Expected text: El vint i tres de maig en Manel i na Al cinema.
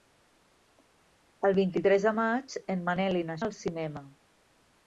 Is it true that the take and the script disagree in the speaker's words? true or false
false